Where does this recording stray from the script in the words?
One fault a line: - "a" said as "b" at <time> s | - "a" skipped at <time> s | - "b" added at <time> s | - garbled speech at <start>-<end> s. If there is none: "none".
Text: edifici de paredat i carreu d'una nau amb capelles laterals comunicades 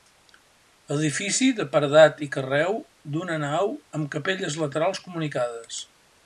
none